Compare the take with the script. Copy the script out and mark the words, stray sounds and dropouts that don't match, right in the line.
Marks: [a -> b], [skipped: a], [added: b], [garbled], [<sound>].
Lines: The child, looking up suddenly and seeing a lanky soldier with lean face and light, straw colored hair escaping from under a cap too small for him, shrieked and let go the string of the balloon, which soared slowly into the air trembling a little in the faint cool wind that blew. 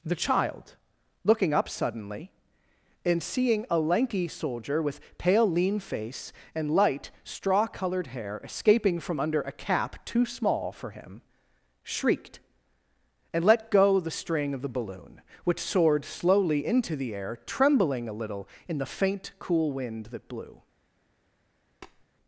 The child, looking up suddenly and seeing a lanky soldier with [added: pale] lean face and light, straw colored hair escaping from under a cap too small for him, shrieked and let go the string of the balloon, which soared slowly into the air trembling a little in the faint cool wind that blew. [tap]